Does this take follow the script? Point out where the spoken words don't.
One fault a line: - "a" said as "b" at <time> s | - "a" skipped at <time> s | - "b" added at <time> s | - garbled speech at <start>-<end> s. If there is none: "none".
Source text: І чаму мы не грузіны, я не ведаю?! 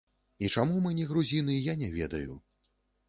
none